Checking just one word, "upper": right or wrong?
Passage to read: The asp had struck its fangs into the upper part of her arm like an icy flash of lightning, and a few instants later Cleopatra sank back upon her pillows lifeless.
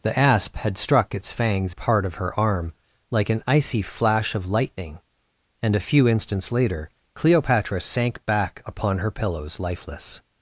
wrong